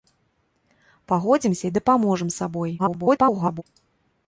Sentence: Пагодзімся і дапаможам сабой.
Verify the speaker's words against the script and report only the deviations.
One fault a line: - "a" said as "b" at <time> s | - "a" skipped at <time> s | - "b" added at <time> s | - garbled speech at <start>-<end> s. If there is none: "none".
- garbled speech at 2.8-3.6 s